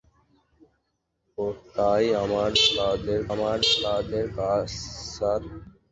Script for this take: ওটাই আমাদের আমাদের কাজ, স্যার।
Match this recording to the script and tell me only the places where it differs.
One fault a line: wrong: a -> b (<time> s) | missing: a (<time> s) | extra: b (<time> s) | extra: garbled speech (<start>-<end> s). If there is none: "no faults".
no faults